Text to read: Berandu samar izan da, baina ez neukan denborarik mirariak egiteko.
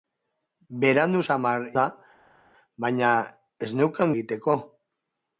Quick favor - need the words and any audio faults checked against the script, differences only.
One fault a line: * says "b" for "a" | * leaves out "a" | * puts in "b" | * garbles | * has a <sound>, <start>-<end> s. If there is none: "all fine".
* leaves out "izan"
* leaves out "denborarik mirariak"